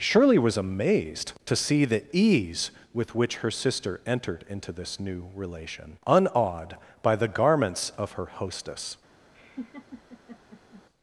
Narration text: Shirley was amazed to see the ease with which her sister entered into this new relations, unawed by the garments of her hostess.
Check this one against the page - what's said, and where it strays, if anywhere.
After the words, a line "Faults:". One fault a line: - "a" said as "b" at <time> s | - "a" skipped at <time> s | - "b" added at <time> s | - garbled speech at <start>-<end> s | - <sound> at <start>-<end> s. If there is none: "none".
Shirley was amazed to see the ease with which her sister entered into this new relation, unawed by the garments of her hostess.
Faults:
- "relations" said as "relation" at 5.4 s
- laugh at 9.3-10.8 s